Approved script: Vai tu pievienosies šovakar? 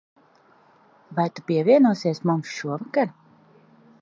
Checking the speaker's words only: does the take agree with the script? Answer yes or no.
no